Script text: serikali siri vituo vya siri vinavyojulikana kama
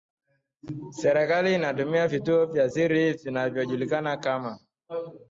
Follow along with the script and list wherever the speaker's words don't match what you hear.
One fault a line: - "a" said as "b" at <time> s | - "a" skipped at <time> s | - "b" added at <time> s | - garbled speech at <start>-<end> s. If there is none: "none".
- "siri" said as "inatumia" at 1.6 s